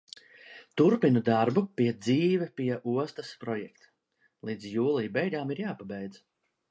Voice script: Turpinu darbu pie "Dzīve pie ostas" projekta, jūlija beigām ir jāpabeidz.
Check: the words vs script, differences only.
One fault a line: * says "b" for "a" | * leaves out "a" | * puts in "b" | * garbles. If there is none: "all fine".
* puts in "līdz"